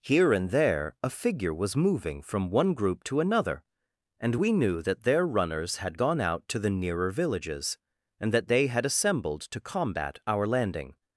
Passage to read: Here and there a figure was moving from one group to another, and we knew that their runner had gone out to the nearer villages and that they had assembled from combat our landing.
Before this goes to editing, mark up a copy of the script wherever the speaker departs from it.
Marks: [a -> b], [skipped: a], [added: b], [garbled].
Here and there a figure was moving from one group to another, and we knew that their [runner -> runners] had gone out to the nearer villages and that they had assembled [from -> to] combat our landing.